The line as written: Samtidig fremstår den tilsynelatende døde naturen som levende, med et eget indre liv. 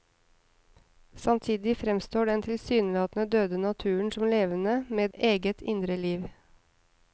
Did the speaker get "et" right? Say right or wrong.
wrong